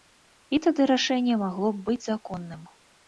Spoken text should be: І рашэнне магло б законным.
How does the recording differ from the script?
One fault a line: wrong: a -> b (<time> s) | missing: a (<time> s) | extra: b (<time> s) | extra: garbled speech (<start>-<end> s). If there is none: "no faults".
extra: тады (0.7 s)
extra: быць (1.9 s)